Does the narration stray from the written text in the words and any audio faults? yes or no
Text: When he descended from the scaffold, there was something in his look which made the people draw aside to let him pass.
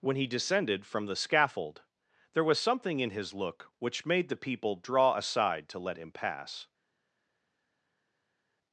no